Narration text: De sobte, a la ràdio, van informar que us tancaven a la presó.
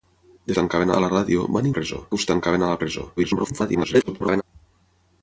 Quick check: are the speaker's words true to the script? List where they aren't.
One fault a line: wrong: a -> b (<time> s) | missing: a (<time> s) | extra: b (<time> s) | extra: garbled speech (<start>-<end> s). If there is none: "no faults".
wrong: sobte -> tancaven (0.6 s)
wrong: informar -> presó (1.8 s)
extra: garbled speech (3.2-4.4 s)